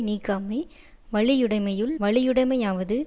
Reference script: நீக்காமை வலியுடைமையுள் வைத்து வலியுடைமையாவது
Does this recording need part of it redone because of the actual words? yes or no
yes